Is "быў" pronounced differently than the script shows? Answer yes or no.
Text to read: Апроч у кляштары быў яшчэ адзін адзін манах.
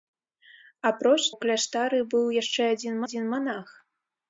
no